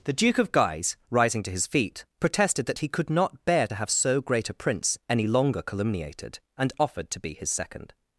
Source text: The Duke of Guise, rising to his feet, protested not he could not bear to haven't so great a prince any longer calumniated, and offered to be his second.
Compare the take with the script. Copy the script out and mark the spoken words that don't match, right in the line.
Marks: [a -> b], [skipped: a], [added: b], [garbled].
The Duke of Guise, rising to his feet, protested [not -> that] he could not bear to [haven't -> have] so great a prince any longer calumniated, and offered to be his second.